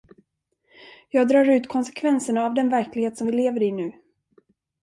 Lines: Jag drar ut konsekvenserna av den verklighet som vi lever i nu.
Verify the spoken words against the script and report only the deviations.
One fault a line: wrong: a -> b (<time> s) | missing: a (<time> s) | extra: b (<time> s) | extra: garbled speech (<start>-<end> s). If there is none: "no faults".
no faults